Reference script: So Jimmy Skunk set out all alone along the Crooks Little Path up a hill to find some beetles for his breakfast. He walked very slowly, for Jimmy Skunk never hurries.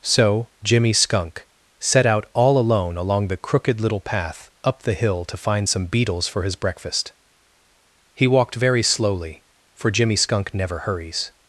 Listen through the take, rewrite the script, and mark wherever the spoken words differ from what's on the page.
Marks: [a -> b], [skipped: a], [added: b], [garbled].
So Jimmy Skunk set out all alone along the [Crooks -> Crooked] Little Path up [a -> the] hill to find some beetles for his breakfast. He walked very slowly, for Jimmy Skunk never hurries.